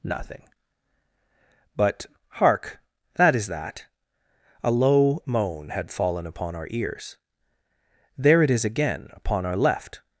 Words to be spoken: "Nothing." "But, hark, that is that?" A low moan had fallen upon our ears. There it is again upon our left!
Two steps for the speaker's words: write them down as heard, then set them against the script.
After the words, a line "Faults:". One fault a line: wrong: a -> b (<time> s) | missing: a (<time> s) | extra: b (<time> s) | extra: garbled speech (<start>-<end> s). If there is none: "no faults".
"Nothing." "But, hark, that is that?" A low moan had fallen upon our ears. There it is again upon our left!
Faults:
no faults